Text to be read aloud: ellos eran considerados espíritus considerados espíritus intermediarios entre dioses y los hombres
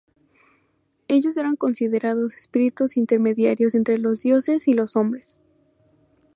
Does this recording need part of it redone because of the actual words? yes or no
yes